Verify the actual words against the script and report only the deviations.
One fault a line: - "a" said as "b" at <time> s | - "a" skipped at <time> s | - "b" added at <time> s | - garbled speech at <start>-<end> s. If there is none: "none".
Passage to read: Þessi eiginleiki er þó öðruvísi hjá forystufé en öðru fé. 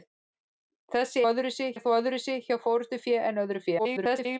- "eiginleiki" said as "öðruvísi" at 1.3 s
- garbled speech at 3.8-4.4 s